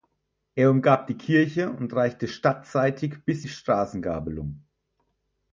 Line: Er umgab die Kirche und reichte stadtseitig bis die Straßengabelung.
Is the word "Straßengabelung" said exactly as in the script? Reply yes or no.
yes